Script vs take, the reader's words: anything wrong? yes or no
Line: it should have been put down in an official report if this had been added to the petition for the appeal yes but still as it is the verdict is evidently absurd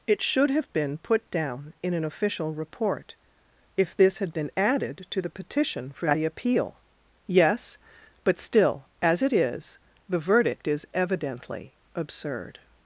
no